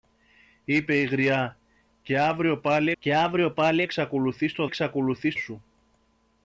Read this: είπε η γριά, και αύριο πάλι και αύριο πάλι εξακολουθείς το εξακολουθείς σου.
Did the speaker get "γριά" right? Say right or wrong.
right